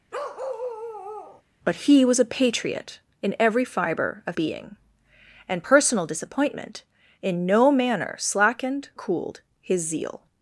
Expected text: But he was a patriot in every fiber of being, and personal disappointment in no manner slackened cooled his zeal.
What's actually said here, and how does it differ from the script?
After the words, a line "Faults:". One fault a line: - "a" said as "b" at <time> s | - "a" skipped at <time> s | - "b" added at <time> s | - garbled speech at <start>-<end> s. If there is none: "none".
But he was a patriot in every fiber of being, and personal disappointment in no manner slackened cooled his zeal.
Faults:
none